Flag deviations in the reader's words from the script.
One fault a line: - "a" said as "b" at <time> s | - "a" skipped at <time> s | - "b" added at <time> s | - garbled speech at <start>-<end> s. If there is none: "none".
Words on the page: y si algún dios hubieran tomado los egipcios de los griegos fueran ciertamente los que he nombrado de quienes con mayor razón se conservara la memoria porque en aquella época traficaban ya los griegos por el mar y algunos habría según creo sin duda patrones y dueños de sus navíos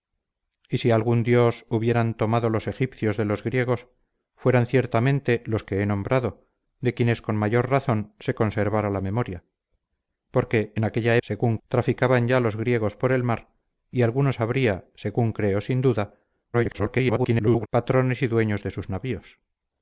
- "época" said as "según" at 11.2 s
- garbled speech at 16.5-17.7 s